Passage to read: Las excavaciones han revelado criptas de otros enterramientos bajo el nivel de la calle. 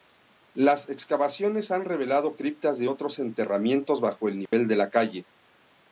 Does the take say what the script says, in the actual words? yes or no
yes